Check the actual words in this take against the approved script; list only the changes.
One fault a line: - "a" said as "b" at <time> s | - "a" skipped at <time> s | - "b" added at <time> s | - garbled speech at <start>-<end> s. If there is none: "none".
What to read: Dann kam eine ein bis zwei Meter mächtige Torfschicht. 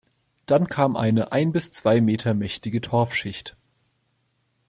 none